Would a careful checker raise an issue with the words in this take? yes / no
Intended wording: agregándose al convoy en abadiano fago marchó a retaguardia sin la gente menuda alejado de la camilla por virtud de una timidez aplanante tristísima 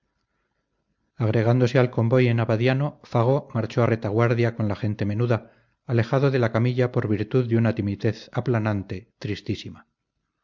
yes